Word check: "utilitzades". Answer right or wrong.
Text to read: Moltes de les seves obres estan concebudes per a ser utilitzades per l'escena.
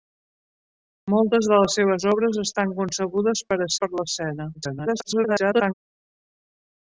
wrong